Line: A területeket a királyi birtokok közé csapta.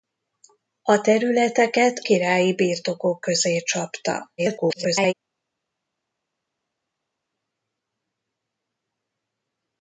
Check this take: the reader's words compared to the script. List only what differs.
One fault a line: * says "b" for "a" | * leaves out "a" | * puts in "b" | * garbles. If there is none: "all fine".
* leaves out "a"
* garbles